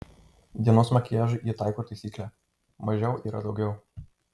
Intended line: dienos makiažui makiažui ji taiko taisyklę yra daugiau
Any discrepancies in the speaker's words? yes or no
yes